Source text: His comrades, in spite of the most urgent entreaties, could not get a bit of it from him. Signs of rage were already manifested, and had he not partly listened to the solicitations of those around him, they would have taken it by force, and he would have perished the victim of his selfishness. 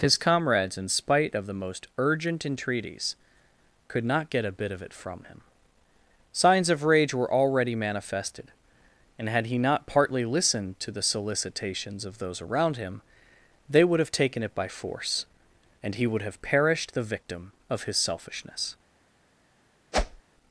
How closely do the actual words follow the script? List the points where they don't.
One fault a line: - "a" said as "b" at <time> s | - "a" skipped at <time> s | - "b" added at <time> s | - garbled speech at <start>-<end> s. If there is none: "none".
none